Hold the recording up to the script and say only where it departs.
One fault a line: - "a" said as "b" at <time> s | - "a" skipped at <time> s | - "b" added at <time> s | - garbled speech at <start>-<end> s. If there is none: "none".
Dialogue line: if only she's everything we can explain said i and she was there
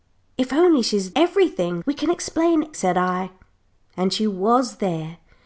none